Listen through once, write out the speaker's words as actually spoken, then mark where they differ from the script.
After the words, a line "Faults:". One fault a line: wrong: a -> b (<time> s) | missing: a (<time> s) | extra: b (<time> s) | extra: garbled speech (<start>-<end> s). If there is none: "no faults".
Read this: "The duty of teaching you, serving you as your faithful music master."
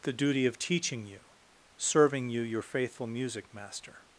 "The duty of teaching you, serving you your faithful music master."
Faults:
missing: as (2.4 s)